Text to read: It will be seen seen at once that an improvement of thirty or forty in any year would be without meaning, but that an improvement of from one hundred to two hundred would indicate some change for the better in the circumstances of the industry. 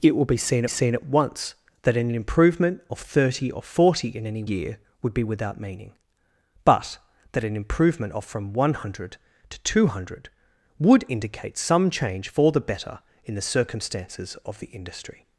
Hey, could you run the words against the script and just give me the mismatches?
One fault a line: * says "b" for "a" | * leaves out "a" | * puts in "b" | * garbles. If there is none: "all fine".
all fine